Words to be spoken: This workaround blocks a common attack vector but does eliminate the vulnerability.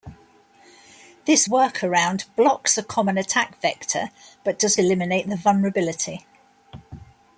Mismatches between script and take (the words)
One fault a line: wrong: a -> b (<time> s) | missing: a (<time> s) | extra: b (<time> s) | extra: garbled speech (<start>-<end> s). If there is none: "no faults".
no faults